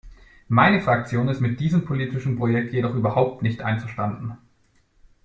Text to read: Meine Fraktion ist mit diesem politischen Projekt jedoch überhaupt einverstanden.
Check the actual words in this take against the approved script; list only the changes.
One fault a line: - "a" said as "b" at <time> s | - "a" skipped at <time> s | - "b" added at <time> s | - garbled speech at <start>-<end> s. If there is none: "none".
- "nicht" added at 3.4 s